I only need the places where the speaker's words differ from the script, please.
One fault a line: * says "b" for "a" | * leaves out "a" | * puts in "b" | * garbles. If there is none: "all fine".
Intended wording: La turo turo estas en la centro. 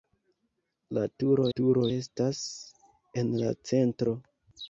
all fine